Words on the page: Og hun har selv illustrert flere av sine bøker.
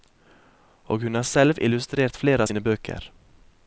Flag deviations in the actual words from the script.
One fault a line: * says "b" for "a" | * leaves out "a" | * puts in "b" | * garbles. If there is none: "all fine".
all fine